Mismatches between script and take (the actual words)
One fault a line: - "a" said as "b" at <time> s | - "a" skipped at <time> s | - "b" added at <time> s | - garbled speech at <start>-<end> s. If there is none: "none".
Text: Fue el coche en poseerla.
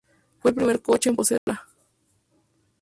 - "primer" added at 0.6 s